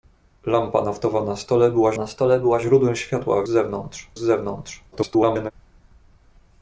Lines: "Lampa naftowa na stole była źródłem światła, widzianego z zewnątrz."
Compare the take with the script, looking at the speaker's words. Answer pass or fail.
fail